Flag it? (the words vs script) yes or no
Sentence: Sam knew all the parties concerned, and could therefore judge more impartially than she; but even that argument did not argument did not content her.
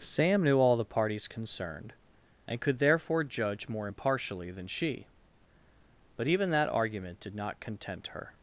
yes